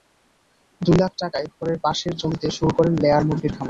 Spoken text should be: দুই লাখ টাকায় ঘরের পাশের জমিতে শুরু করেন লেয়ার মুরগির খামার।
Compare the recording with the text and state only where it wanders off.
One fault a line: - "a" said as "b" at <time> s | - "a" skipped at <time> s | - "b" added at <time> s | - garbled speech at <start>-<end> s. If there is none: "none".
none